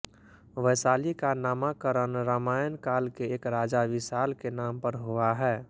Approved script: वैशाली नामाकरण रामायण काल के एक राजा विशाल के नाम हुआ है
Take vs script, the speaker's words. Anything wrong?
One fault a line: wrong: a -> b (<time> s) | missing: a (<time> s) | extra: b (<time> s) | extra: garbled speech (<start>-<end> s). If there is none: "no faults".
extra: का (1.1 s)
extra: पर (4.8 s)